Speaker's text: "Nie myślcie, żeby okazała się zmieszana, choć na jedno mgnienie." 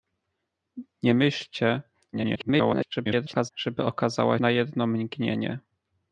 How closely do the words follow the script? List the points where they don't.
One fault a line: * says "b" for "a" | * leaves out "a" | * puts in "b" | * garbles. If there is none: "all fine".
* garbles
* leaves out "się zmieszana choć"